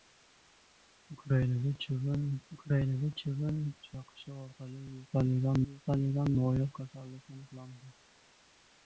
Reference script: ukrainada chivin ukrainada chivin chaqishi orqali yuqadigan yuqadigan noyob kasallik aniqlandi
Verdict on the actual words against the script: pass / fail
pass